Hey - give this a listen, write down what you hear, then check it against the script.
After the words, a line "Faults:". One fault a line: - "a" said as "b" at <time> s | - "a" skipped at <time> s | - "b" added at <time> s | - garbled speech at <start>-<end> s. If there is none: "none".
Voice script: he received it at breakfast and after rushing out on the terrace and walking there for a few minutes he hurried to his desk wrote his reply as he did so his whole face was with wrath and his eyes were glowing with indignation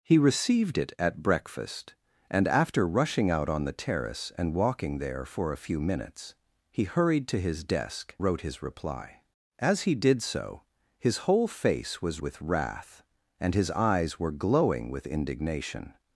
he received it at breakfast and after rushing out on the terrace and walking there for a few minutes he hurried to his desk wrote his reply as he did so his whole face was with wrath and his eyes were glowing with indignation
Faults:
none